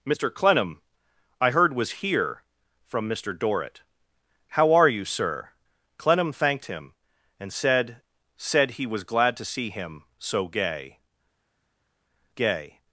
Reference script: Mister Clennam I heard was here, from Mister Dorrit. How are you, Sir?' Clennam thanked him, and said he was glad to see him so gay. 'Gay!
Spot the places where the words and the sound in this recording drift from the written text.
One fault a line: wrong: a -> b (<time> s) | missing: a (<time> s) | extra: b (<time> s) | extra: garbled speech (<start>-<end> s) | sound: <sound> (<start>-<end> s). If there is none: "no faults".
extra: said (8.4 s)